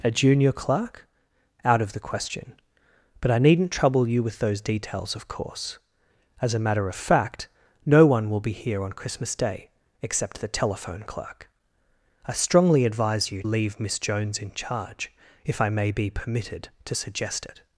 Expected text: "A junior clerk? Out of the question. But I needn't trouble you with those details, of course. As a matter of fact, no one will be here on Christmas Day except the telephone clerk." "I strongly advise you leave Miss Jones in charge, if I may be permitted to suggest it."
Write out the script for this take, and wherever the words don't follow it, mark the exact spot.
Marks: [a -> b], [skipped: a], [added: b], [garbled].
"A junior clerk? Out of the question. But I needn't trouble you with those details, of course. As a matter of fact, no one will be here on Christmas Day except the telephone clerk." "I strongly advise you leave Miss Jones in charge, if I may be permitted to suggest it."